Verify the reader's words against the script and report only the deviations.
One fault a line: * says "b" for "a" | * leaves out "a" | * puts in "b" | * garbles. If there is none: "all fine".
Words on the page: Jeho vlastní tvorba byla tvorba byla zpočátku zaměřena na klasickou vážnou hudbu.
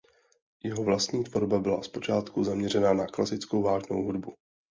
* leaves out "tvorba byla"